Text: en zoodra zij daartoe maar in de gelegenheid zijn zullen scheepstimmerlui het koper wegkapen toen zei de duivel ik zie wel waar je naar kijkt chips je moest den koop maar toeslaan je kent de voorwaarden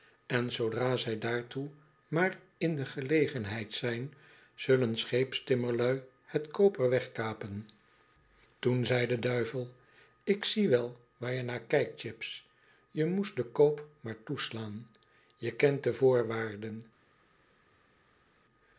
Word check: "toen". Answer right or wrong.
right